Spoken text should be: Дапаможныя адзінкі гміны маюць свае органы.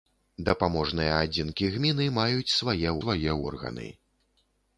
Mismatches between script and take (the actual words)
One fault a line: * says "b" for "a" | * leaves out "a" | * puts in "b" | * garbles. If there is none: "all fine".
* puts in "свае"